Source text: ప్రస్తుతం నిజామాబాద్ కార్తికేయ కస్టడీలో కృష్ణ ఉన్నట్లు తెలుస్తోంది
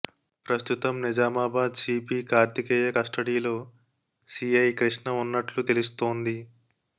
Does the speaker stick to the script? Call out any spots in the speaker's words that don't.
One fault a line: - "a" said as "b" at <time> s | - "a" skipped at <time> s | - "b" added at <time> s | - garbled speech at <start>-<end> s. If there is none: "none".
- "సిపి" added at 1.8 s
- "సిఐ" added at 4.3 s